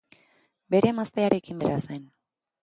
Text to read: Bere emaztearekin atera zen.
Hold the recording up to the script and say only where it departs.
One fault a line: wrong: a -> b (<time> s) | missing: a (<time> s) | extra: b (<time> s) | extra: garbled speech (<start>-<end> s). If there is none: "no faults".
no faults